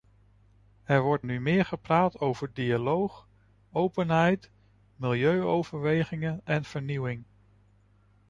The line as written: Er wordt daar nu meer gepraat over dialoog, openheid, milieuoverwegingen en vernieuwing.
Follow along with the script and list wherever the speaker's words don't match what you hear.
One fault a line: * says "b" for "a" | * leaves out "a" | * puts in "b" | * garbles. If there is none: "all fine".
* leaves out "daar"